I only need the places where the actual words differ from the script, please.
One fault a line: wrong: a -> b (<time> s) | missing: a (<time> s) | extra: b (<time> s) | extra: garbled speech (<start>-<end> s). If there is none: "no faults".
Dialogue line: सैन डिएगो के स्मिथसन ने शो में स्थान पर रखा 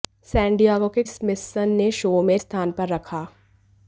no faults